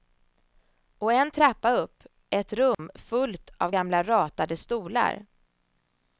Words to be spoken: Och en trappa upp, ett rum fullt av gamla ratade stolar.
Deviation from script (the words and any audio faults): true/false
true